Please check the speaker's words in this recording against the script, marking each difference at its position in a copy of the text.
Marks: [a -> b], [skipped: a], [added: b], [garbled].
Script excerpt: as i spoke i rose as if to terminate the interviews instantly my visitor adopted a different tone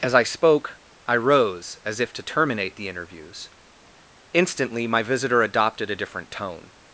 as i spoke i rose as if to terminate the interviews instantly my visitor adopted a different tone